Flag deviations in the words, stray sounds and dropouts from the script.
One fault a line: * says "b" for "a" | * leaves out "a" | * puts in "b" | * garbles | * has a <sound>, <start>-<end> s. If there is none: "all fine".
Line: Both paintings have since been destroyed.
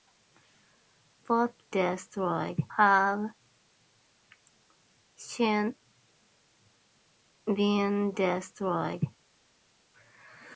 * says "destroyed" for "paintings"